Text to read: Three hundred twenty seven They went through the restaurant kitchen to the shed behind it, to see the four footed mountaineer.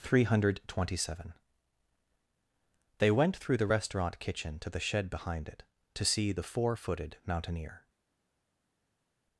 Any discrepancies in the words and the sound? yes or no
no